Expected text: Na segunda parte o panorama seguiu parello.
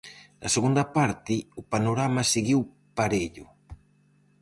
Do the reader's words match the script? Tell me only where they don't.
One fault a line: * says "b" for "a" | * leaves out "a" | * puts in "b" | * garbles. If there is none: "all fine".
all fine